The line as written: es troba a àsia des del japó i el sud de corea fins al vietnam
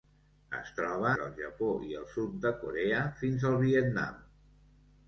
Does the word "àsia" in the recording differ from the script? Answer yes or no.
yes